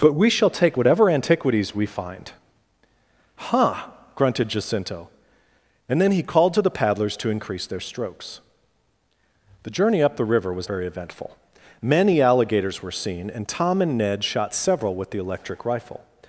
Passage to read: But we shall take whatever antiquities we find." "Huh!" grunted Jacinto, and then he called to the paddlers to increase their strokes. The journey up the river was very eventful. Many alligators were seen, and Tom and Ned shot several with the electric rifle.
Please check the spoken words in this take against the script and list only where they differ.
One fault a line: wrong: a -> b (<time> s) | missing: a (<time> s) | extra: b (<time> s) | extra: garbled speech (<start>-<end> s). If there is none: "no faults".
no faults